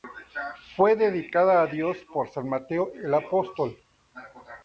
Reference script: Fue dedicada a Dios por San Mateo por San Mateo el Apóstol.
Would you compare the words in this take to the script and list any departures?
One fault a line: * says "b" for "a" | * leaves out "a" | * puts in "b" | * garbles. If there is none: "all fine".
* leaves out "por San Mateo"